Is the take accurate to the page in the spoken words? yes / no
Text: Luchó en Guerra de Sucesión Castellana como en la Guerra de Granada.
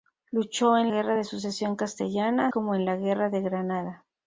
yes